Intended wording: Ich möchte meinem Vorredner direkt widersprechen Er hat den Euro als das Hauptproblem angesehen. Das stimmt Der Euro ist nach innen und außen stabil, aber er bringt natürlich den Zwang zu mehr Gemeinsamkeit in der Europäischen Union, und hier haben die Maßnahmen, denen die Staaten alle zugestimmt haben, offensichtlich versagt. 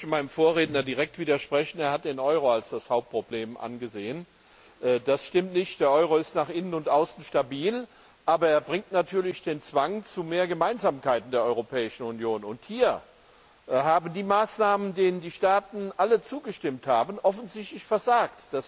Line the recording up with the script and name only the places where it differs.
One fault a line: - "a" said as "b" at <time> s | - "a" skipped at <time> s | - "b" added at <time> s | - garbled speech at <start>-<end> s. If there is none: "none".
- "nicht" added at 5.5 s